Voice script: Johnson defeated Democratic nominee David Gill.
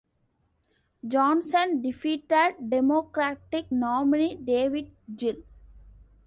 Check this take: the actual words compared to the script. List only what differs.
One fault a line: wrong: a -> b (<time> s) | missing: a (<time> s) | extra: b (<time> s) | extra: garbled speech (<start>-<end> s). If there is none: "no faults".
no faults